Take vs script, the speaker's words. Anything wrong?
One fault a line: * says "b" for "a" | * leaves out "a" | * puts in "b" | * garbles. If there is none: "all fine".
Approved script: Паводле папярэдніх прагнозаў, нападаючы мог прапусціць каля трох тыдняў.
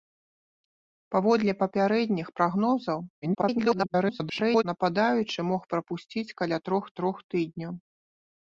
* garbles
* puts in "трох"